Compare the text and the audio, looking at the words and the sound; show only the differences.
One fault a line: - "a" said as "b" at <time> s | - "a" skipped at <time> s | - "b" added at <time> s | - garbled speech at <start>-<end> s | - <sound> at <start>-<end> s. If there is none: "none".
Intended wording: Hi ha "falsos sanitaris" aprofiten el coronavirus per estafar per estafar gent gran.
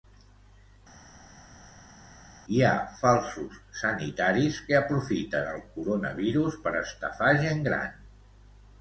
- "que" added at 4.7 s
- "per estafar" skipped at 7.4 s